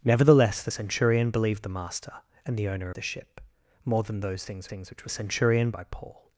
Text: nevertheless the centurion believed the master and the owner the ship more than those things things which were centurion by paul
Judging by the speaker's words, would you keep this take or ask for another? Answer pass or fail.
pass